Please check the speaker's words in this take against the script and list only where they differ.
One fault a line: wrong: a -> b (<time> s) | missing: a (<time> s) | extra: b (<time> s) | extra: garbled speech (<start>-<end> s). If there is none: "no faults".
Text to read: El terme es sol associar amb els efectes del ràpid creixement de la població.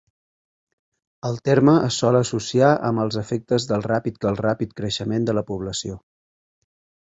extra: del ràpid (4.3 s)